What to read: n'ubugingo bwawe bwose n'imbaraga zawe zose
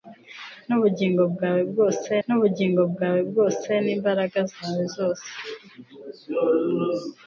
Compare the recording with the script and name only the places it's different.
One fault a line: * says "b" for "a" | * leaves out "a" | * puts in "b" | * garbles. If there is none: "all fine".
* puts in "n'ubugingo bwawe bwose"